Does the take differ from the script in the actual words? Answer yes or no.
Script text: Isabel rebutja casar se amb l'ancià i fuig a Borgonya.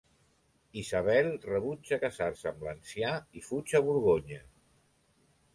no